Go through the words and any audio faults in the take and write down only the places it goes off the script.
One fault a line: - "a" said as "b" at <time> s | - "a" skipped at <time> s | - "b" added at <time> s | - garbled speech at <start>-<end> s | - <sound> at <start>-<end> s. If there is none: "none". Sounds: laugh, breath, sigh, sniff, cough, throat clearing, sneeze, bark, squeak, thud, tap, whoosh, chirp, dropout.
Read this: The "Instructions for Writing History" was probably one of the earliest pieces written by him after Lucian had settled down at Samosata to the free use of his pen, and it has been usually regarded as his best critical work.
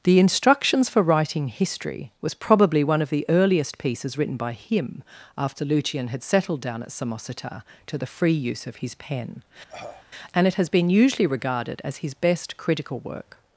- cough at 9.7-10.0 s